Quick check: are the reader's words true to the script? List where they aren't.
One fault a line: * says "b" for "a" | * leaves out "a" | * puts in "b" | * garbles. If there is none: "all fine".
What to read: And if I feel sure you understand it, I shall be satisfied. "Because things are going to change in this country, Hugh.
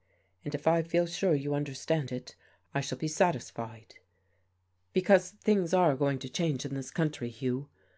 all fine